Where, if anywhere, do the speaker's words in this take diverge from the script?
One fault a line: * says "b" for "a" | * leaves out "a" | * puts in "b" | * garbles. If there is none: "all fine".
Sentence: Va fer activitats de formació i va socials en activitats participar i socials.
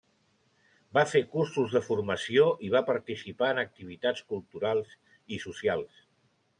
* says "cursos" for "activitats"
* says "participar" for "socials"
* says "culturals" for "participar"